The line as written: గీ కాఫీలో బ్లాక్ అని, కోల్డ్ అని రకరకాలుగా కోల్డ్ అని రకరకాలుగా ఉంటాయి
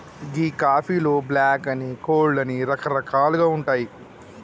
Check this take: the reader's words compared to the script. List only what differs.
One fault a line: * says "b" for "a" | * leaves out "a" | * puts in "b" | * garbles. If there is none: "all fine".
* leaves out "కోల్డ్ అని రకరకాలుగా"